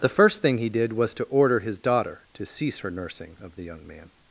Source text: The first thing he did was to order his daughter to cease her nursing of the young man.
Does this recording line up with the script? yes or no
yes